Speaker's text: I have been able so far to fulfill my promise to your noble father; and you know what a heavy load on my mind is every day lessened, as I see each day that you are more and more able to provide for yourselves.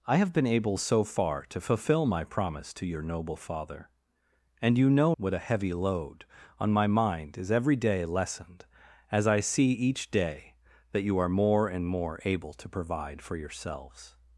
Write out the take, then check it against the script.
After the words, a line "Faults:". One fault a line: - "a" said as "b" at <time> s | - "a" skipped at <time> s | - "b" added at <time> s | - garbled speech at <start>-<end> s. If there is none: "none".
I have been able so far to fulfill my promise to your noble father; and you know what a heavy load on my mind is every day lessened, as I see each day that you are more and more able to provide for yourselves.
Faults:
none